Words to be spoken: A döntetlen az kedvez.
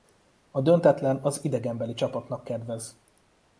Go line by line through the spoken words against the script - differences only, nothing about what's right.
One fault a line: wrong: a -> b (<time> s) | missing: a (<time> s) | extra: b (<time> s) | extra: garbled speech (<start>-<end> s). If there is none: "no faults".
extra: idegenbeli csapatnak (1.4 s)